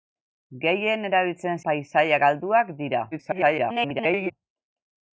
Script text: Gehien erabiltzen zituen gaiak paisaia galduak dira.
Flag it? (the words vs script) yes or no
yes